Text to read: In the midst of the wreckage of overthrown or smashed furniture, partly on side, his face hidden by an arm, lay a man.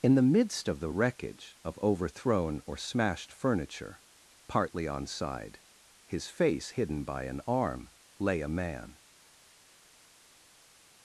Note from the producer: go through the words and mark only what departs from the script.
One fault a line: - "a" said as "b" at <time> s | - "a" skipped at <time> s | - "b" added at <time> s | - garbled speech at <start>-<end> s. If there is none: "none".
none